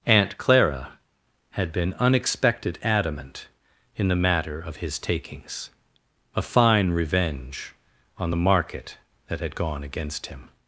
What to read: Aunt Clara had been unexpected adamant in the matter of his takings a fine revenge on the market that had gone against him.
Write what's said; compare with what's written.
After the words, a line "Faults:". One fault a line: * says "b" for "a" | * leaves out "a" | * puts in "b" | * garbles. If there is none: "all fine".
Aunt Clara had been unexpected adamant in the matter of his takings a fine revenge on the market that had gone against him.
Faults:
all fine